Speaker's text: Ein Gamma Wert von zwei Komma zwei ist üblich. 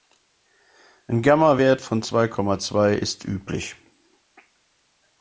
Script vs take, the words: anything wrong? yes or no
no